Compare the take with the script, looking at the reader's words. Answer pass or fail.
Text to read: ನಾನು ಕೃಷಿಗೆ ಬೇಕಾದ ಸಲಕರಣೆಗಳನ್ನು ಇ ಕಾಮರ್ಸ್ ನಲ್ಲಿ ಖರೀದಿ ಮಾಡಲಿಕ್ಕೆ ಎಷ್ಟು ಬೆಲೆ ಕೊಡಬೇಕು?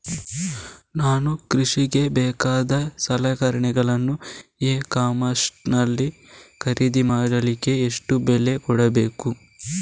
pass